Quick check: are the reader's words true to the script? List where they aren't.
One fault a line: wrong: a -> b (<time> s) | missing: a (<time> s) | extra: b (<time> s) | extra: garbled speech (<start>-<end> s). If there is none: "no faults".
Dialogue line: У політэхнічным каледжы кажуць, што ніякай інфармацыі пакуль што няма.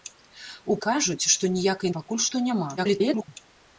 missing: політэхнічным каледжы (0.8 s)
missing: інфармацыі (1.9 s)
extra: garbled speech (2.8-3.3 s)